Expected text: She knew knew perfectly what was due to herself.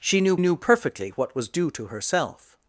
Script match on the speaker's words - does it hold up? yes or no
yes